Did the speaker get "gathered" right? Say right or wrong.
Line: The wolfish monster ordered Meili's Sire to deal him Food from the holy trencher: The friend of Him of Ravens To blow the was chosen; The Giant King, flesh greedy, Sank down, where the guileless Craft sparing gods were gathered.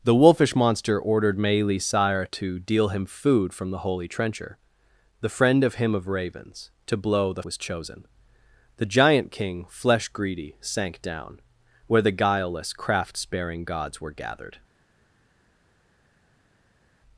right